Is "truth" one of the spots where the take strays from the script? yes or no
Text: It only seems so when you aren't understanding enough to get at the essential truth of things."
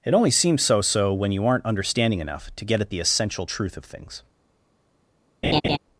no